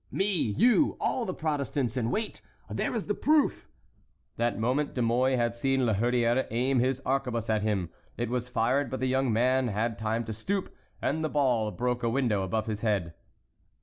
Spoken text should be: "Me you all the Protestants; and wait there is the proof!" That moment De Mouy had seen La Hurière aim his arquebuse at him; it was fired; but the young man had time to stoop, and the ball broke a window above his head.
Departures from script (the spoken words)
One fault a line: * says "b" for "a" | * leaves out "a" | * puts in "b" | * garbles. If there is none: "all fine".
all fine